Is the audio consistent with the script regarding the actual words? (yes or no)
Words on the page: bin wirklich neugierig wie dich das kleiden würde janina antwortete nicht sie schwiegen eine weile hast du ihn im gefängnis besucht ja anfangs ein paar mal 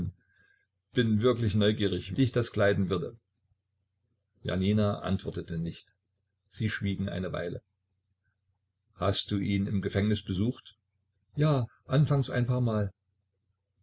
no